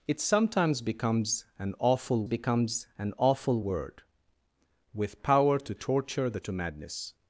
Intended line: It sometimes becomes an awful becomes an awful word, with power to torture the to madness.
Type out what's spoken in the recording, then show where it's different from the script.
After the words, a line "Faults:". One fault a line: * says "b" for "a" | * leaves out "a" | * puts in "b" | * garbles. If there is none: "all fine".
It sometimes becomes an awful becomes an awful word, with power to torture the to madness.
Faults:
all fine